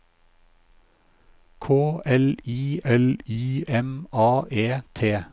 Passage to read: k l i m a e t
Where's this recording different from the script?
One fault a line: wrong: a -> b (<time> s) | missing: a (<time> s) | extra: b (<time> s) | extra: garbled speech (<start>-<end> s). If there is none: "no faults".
extra: l i (2.8 s)